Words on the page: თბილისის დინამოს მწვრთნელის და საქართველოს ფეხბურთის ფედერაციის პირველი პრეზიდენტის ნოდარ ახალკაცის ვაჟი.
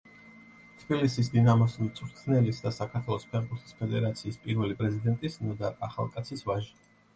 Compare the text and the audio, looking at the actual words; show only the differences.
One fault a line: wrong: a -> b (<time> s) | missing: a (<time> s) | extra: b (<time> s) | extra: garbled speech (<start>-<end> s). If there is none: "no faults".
no faults